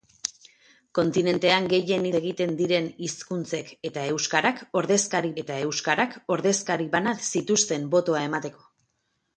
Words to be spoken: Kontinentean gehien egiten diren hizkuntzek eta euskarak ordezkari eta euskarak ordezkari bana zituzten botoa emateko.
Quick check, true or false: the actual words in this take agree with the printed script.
true